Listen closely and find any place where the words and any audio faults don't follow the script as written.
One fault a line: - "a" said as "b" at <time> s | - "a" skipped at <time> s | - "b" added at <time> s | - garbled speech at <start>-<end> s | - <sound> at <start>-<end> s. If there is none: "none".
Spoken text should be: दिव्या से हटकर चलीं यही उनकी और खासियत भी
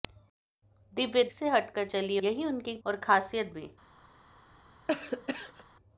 - cough at 4.9-5.6 s